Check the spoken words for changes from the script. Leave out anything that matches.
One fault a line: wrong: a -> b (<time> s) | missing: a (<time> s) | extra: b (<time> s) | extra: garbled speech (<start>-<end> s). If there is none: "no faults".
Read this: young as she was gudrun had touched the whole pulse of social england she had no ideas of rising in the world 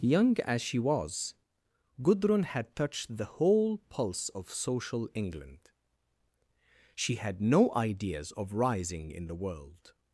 no faults